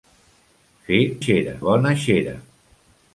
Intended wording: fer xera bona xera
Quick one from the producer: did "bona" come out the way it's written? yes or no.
yes